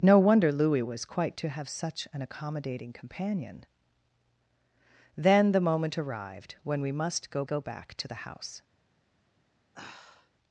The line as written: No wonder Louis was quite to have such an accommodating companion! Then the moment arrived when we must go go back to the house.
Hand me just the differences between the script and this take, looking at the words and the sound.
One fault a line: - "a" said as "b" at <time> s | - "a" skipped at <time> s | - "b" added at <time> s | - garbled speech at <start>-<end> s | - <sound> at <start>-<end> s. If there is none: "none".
- sigh at 9.7-10.3 s